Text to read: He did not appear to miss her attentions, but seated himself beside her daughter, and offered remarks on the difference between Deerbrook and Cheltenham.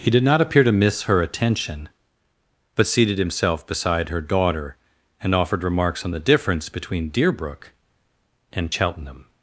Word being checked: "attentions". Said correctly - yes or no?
no